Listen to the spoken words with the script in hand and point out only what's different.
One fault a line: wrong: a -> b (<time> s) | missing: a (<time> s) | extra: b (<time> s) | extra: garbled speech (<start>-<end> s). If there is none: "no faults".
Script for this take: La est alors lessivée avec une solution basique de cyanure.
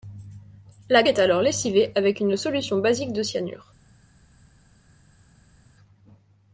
no faults